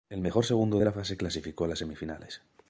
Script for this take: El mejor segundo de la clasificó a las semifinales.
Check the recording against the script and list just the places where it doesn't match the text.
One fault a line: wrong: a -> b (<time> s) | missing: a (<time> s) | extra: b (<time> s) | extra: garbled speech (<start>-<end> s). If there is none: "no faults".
extra: fase (0.9 s)